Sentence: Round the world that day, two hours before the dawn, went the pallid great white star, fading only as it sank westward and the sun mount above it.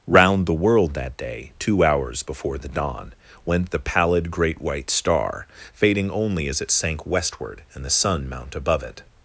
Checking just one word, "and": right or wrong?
right